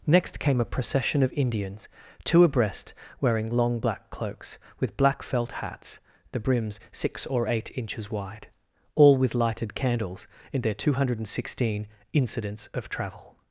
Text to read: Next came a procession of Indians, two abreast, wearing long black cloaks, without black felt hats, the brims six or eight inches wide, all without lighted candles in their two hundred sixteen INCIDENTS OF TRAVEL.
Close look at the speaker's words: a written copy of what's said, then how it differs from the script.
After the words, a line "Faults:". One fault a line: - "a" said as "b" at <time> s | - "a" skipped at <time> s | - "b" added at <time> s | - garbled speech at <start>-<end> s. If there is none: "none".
Next came a procession of Indians, two abreast, wearing long black cloaks, with black felt hats, the brims six or eight inches wide, all with lighted candles in their two hundred sixteen INCIDENTS OF TRAVEL.
Faults:
- "without" said as "with" at 4.8 s
- "without" said as "with" at 9.2 s